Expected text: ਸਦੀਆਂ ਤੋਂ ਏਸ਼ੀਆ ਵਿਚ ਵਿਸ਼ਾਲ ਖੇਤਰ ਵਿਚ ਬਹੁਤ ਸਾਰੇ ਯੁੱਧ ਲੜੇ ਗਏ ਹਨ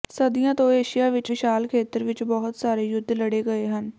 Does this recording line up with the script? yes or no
yes